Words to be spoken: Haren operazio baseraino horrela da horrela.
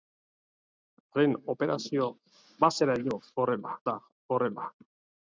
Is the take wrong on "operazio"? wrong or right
right